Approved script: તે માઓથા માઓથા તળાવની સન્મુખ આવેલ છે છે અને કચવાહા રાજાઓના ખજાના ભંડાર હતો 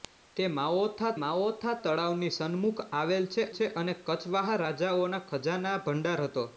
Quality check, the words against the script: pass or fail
pass